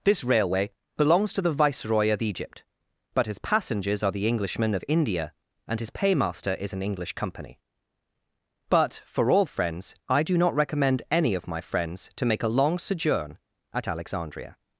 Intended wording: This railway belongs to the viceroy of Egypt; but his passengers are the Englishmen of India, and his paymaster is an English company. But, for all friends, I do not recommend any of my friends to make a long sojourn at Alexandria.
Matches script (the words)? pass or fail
pass